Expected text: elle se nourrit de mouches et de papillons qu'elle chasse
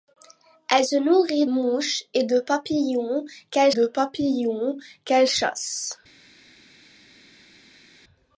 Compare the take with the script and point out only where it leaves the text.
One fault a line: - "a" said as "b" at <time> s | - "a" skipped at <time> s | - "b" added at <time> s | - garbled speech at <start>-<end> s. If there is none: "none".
- "mouches et" added at 1.5 s
- "mouches et" said as "papillons qu'elle" at 2.4 s